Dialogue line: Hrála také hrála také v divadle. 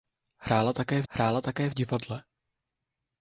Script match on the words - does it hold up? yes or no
yes